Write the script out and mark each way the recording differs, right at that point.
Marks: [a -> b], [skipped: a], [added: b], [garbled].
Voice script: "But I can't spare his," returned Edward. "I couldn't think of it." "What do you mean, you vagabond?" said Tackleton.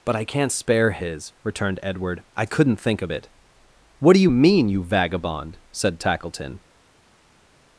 "But I can't spare his," returned Edward. "I couldn't think of it." "What do you mean, you vagabond?" said Tackleton.